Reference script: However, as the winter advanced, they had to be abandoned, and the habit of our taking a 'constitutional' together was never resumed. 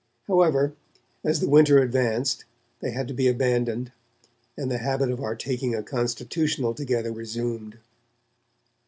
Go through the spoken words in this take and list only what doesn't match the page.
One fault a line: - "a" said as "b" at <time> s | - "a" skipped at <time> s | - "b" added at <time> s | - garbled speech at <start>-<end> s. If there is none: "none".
- "was never" skipped at 7.1 s